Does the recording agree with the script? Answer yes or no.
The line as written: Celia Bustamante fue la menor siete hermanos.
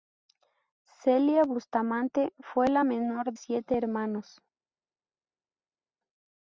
yes